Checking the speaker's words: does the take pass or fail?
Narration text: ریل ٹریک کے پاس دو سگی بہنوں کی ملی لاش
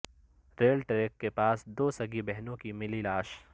pass